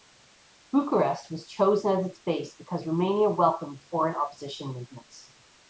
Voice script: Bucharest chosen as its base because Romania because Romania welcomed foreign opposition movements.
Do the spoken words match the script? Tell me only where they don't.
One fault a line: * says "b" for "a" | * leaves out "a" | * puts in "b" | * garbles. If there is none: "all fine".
* puts in "was"
* leaves out "because Romania"